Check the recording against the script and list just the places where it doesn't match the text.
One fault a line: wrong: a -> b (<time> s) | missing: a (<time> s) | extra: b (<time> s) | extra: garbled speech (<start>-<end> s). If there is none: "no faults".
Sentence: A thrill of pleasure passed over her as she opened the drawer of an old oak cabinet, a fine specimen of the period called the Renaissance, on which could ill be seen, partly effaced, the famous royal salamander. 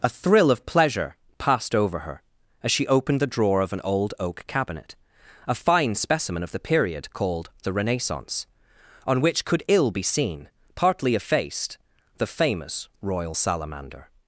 no faults